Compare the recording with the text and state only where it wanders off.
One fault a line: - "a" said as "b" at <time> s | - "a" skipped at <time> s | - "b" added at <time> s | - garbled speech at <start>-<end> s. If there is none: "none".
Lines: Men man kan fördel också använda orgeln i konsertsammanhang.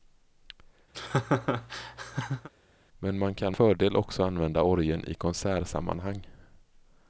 none